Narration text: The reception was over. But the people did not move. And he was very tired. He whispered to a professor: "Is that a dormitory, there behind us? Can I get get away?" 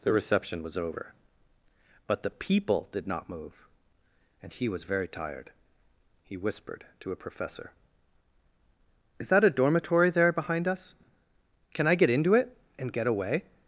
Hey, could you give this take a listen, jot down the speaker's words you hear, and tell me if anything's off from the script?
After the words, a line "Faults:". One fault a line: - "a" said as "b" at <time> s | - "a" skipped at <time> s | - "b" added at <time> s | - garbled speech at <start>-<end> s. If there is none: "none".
The reception was over. But the people did not move. And he was very tired. He whispered to a professor: "Is that a dormitory, there behind us? Can I get into it and get away?"
Faults:
- "into it and" added at 12.1 s